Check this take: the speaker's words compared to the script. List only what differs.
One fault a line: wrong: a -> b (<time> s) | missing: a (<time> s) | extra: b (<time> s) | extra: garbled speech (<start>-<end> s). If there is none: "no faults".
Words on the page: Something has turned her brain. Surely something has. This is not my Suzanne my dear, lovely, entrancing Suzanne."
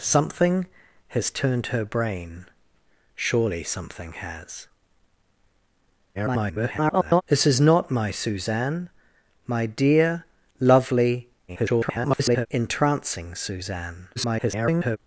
extra: garbled speech (6.1-7.2 s)
extra: garbled speech (11.5-12.5 s)
extra: garbled speech (14.2-15.0 s)